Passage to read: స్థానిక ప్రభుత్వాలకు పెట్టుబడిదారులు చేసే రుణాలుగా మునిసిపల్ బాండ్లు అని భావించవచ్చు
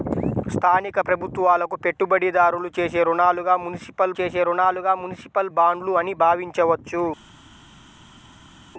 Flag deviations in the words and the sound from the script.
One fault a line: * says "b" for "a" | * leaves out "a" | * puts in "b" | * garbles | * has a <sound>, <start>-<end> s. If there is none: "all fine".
* puts in "చేసే రుణాలుగా మునిసిపల్"